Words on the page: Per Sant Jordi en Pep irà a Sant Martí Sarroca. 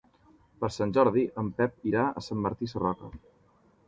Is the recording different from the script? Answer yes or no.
no